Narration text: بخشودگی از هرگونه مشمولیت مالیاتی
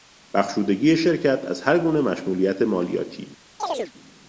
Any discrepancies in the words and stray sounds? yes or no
yes